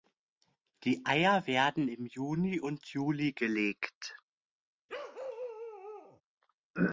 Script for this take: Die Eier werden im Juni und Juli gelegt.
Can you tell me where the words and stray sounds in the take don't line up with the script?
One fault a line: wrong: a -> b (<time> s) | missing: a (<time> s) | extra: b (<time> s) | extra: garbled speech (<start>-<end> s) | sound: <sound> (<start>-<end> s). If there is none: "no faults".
sound: bark (4.9-6.2 s)